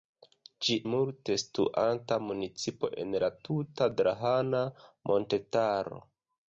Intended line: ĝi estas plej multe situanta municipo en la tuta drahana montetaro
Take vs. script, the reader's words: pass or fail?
fail